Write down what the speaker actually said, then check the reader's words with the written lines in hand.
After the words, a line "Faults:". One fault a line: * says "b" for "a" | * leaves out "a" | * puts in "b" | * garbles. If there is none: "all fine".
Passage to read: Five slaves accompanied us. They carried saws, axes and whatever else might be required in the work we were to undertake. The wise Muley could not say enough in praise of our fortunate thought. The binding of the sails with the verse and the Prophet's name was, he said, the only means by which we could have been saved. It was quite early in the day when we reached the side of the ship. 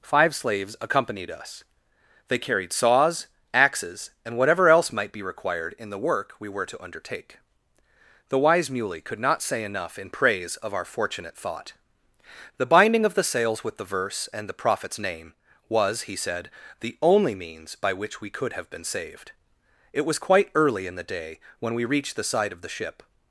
Five slaves accompanied us. They carried saws, axes and whatever else might be required in the work we were to undertake. The wise Muley could not say enough in praise of our fortunate thought. The binding of the sails with the verse and the Prophet's name was, he said, the only means by which we could have been saved. It was quite early in the day when we reached the side of the ship.
Faults:
all fine